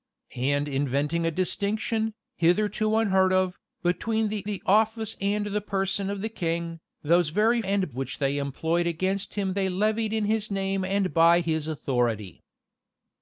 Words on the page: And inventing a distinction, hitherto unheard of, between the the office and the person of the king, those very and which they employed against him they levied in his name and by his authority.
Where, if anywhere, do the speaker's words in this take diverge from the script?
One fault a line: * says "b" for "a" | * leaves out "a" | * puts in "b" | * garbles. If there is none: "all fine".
all fine